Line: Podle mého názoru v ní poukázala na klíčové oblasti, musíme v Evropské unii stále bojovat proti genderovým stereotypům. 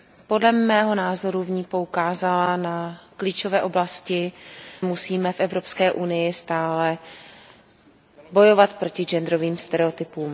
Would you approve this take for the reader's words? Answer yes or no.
yes